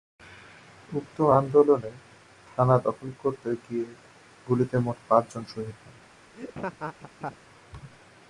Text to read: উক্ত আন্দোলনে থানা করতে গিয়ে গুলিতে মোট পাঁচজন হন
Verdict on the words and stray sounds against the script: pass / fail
fail